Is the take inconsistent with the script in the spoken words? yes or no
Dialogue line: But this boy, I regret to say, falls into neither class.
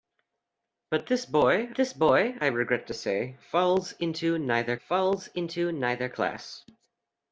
yes